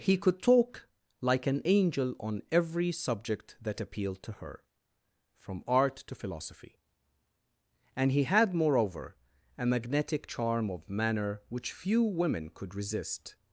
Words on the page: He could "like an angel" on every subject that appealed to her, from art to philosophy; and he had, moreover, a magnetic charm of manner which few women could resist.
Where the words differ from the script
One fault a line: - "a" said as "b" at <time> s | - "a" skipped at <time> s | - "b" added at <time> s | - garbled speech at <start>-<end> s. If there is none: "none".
- "talk" added at 0.4 s